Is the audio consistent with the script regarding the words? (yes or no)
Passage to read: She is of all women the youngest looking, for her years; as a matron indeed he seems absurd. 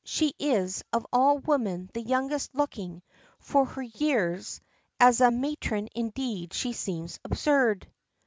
no